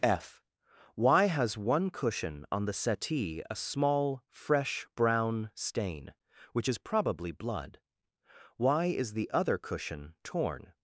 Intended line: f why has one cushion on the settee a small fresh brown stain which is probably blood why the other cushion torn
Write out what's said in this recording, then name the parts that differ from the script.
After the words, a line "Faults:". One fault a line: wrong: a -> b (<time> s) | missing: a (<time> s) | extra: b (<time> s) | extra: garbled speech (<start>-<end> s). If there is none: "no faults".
f why has one cushion on the settee a small fresh brown stain which is probably blood why is the other cushion torn
Faults:
extra: is (8.9 s)